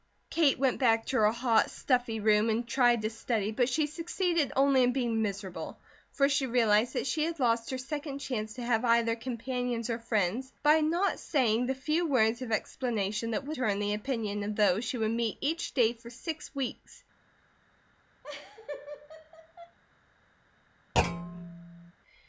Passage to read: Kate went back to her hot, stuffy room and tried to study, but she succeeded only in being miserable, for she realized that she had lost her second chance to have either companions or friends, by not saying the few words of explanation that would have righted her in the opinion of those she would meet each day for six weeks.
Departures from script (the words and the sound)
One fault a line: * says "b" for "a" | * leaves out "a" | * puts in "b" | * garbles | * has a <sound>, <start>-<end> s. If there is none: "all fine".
* leaves out "have righted"
* has a laugh, 18.2-19.8 s
* has a thud, 20.9-21.9 s